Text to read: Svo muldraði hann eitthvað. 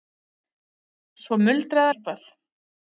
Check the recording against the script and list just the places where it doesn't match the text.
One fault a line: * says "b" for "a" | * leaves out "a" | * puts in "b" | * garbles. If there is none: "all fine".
* leaves out "hann"